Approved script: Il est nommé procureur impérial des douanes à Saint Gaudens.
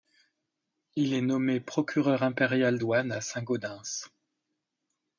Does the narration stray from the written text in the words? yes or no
yes